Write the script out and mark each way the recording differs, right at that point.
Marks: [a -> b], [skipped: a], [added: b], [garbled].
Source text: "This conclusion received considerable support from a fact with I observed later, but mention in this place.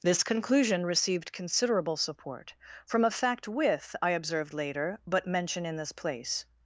"This conclusion received considerable support from a fact with I observed later, but mention in this place.